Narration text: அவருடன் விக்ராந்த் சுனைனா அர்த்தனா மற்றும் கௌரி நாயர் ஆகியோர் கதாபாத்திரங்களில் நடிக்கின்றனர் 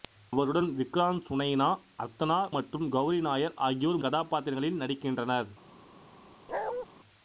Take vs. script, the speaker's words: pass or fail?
pass